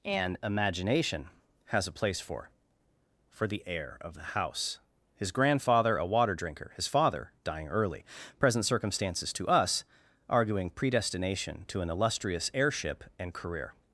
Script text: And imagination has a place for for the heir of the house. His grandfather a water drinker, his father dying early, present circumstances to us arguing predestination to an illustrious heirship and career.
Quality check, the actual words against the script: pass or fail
pass